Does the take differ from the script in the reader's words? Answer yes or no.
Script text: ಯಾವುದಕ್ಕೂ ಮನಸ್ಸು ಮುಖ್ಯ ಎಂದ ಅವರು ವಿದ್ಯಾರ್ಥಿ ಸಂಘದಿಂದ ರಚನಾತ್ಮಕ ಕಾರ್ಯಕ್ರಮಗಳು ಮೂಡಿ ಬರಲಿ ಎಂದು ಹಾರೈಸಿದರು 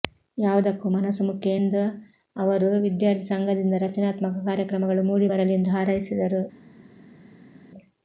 no